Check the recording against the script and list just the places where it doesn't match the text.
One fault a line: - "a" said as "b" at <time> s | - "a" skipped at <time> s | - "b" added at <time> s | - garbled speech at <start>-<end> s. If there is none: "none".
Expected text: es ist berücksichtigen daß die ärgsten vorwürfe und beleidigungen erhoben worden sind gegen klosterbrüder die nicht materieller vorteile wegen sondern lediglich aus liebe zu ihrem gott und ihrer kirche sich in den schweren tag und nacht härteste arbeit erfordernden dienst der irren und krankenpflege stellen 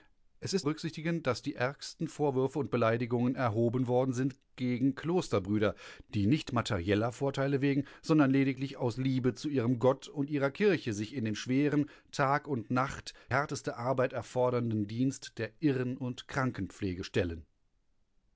none